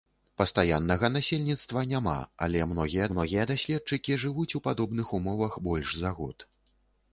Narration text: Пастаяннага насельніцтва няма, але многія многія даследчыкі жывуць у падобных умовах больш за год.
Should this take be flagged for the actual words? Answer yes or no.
no